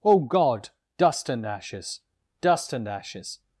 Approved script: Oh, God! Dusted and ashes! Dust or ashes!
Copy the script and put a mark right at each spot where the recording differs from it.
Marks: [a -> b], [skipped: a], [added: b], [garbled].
Oh, God! [Dusted -> Dust] and ashes! Dust [or -> and] ashes!